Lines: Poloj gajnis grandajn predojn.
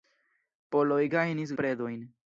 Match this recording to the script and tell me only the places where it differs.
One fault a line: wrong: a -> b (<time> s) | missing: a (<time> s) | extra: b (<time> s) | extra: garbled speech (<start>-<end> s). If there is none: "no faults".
missing: grandajn (1.6 s)